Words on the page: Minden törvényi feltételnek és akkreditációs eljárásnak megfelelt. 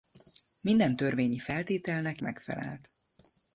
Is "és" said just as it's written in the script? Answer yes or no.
no